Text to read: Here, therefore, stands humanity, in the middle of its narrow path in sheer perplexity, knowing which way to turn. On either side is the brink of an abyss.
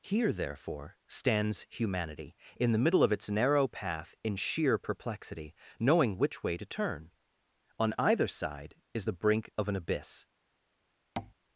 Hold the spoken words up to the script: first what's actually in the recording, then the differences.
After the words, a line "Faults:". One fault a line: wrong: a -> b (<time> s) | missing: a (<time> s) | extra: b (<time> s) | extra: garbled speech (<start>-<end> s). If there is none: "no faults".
Here, therefore, stands humanity, in the middle of its narrow path in sheer perplexity, knowing which way to turn. On either side is the brink of an abyss.
Faults:
no faults